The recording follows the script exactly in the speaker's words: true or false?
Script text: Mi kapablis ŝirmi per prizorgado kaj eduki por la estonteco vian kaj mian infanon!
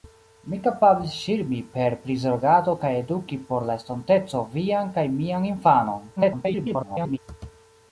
false